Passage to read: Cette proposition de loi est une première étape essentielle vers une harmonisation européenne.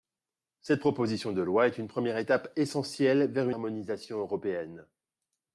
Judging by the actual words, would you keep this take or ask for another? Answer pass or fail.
fail